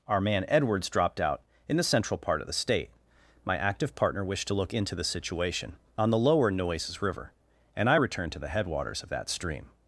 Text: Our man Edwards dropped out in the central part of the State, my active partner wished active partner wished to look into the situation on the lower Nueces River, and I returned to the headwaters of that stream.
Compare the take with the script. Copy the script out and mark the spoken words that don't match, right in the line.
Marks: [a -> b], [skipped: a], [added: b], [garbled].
Our man Edwards dropped out in the central part of the State, my active partner wished [skipped: active partner wished] to look into the situation on the lower Nueces River, and I returned to the headwaters of that stream.